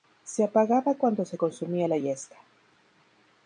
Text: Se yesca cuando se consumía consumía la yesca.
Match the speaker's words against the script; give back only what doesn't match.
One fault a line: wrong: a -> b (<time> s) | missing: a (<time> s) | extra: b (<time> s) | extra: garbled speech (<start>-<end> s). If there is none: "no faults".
wrong: yesca -> apagaba (0.4 s)
missing: consumía (1.9 s)